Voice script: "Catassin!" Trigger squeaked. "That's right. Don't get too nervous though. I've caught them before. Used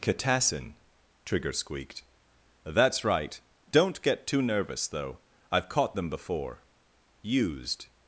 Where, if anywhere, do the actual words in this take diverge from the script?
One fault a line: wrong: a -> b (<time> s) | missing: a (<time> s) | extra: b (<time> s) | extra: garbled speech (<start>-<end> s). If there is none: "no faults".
no faults